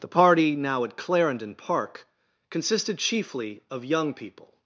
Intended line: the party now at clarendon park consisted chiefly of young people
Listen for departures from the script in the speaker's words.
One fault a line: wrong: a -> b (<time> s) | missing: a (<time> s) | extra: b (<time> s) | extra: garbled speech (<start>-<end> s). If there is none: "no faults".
no faults